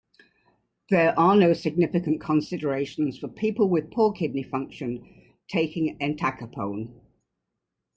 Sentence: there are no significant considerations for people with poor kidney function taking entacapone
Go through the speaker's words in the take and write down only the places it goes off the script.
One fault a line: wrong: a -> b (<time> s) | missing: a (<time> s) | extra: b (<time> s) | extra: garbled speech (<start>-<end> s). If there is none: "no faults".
no faults